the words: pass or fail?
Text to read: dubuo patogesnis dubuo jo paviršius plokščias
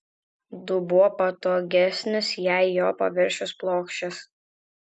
fail